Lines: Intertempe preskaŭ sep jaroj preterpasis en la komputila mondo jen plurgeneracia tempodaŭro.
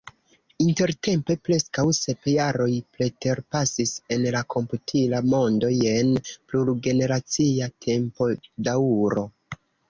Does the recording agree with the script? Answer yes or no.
yes